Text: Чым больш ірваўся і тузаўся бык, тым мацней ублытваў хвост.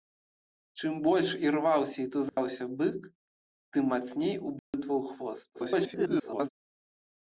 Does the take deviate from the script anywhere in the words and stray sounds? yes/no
yes